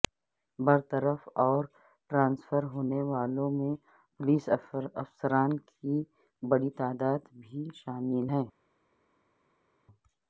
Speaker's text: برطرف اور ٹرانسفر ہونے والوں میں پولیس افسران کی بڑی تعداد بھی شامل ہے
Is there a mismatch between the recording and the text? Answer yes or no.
no